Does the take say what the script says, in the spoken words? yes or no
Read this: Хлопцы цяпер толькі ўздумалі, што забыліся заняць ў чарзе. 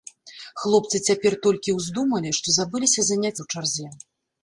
yes